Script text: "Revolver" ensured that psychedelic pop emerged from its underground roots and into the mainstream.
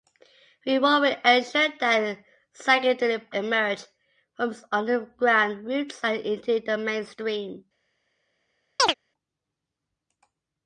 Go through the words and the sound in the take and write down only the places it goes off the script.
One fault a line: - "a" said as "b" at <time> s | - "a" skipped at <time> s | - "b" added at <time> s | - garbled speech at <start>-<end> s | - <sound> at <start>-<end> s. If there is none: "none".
- "pop" skipped at 3.3 s
- chirp at 8.8-8.9 s